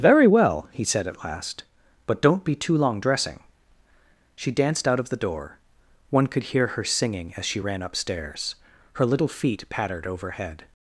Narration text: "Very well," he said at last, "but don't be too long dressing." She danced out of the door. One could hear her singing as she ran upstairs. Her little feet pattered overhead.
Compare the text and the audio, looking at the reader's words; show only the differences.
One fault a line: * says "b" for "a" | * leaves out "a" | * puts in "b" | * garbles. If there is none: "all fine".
all fine